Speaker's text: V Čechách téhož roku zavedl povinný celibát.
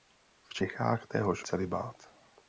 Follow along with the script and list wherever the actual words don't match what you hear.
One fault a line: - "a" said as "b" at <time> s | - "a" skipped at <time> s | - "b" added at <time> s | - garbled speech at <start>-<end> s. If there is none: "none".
- "roku zavedl povinný" skipped at 1.4 s